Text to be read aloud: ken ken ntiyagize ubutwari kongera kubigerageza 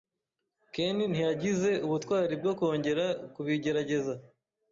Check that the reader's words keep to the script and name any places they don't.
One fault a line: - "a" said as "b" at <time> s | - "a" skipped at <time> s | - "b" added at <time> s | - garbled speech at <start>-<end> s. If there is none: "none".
- "ken" skipped at 1.0 s
- "bwo" added at 2.4 s